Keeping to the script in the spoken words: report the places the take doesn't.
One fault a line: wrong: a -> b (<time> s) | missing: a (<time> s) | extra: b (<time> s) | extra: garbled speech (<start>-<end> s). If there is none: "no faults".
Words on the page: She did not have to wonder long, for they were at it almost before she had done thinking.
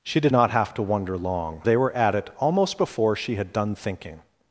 missing: for (1.6 s)